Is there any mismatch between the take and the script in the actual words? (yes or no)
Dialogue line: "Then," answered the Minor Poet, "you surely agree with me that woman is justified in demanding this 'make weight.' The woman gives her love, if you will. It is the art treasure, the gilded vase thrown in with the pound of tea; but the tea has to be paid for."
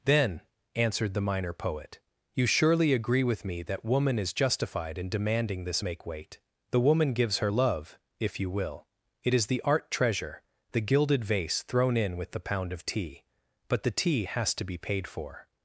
no